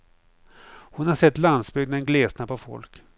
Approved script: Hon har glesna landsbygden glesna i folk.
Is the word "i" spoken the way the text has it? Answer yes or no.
no